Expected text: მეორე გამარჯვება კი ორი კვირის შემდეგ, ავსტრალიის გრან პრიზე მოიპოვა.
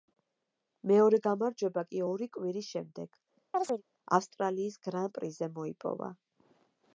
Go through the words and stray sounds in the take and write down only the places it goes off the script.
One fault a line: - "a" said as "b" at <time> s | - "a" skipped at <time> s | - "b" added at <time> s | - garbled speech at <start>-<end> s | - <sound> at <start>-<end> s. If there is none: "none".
- chirp at 3.5-3.8 s